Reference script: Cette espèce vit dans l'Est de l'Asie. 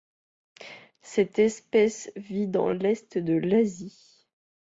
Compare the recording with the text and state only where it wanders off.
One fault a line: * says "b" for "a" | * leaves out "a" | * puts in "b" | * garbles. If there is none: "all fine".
all fine